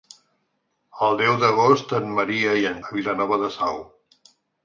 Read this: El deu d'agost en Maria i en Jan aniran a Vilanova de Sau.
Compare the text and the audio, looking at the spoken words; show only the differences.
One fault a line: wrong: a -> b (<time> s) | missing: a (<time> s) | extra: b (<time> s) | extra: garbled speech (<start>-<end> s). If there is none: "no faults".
missing: Jan aniran (2.8 s)